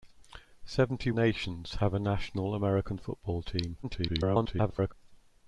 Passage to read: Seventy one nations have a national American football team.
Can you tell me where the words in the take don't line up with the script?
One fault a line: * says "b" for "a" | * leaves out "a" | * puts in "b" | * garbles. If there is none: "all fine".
* leaves out "one"
* garbles